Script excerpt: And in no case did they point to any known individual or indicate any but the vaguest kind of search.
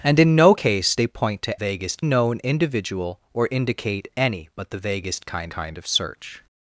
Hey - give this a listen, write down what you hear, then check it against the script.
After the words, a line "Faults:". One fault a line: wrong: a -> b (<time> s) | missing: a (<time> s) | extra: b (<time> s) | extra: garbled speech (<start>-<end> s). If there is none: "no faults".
And in no case they point to vaguest known individual or indicate any but the vaguest kind kind of search.
Faults:
missing: did (0.9 s)
wrong: any -> vaguest (1.5 s)
extra: kind (5.5 s)